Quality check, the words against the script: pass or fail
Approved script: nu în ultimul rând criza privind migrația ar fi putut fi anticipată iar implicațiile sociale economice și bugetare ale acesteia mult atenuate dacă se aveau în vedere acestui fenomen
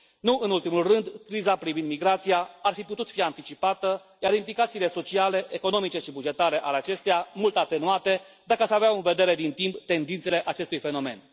fail